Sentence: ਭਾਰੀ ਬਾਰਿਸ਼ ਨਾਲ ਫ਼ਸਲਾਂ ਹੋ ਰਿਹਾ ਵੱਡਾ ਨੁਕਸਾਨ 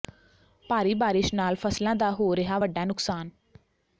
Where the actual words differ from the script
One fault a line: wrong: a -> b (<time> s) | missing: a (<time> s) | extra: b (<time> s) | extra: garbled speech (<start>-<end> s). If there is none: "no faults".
extra: ਦਾ (1.9 s)